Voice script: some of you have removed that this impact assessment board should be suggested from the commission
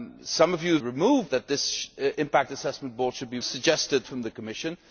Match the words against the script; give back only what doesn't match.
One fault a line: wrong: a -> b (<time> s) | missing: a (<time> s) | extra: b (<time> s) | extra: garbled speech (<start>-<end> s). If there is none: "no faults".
no faults